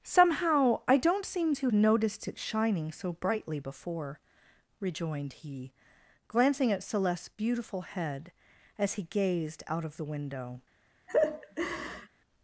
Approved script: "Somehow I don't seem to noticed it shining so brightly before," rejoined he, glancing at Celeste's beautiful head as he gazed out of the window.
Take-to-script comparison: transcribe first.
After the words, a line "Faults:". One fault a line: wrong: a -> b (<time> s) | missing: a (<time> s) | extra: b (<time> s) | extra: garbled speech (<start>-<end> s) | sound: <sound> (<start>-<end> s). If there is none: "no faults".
"Somehow I don't seem to noticed it shining so brightly before," rejoined he, glancing at Celeste's beautiful head as he gazed out of the window.
Faults:
sound: laugh (11.1-12.1 s)